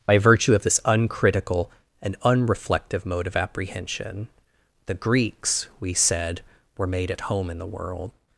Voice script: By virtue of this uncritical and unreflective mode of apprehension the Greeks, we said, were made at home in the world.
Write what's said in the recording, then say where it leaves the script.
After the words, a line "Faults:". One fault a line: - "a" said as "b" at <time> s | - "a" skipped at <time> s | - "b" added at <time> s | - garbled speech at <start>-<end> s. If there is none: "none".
By virtue of this uncritical and unreflective mode of apprehension the Greeks, we said, were made at home in the world.
Faults:
none